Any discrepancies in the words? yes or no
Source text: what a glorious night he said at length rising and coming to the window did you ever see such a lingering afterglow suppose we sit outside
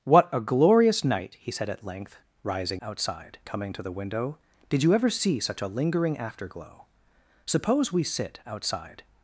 yes